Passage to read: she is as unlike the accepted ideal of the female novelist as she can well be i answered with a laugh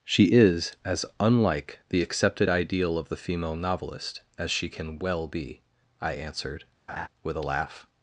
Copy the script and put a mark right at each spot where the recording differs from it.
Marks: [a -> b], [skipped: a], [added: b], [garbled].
she is as unlike the accepted ideal of the female novelist as she can well be i answered with a laugh